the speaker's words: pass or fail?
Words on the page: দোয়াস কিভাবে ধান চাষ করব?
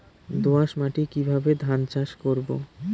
fail